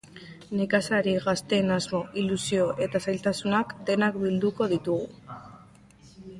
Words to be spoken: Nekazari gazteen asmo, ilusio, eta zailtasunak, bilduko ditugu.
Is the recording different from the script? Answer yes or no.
yes